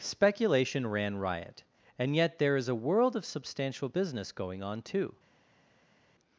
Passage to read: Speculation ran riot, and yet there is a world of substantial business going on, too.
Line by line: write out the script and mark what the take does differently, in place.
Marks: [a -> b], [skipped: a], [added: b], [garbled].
Speculation ran riot, and yet there is a world of substantial business going on, too.